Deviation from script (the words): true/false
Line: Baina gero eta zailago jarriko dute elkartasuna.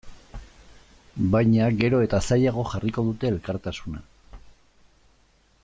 false